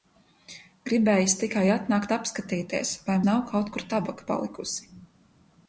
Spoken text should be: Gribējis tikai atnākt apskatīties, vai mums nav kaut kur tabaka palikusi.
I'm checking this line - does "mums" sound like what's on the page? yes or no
no